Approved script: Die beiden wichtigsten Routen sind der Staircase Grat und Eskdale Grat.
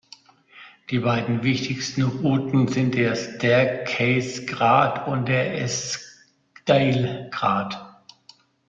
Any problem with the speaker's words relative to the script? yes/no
yes